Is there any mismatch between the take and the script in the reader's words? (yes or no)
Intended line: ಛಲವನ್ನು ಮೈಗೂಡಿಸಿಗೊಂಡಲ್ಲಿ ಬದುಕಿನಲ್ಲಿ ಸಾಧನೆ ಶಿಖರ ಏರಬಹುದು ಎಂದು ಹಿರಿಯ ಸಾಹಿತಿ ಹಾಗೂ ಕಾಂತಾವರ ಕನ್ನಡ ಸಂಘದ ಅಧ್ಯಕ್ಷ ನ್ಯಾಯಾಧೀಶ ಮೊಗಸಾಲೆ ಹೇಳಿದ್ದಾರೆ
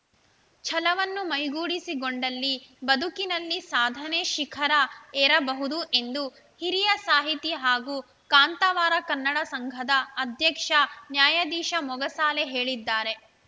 no